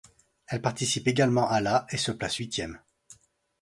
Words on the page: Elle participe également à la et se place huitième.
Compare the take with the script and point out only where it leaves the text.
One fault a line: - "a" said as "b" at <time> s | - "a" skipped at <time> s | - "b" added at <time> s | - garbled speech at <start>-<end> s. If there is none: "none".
none